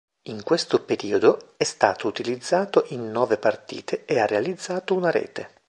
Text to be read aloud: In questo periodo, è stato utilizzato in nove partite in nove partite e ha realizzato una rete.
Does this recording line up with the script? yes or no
no